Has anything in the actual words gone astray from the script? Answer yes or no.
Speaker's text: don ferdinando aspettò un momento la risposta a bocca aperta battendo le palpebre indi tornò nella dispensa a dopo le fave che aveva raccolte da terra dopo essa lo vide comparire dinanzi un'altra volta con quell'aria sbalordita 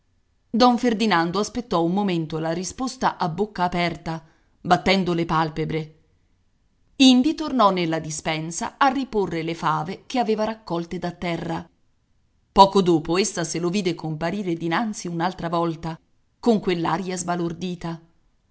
yes